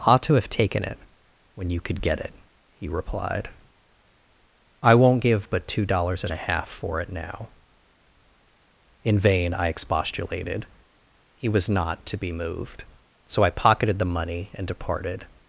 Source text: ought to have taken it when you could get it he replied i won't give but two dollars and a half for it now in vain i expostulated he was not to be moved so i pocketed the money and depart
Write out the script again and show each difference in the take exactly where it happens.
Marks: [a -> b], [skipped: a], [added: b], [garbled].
ought to have taken it when you could get it he replied i won't give but two dollars and a half for it now in vain i expostulated he was not to be moved so i pocketed the money and [depart -> departed]